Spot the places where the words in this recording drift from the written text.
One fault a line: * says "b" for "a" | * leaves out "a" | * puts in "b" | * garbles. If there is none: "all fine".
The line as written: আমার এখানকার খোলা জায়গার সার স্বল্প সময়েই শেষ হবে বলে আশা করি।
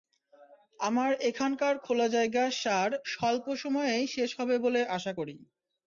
all fine